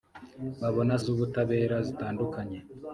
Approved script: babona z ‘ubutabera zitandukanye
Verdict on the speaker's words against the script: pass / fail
pass